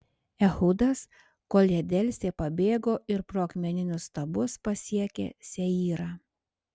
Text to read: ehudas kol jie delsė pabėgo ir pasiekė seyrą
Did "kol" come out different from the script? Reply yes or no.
no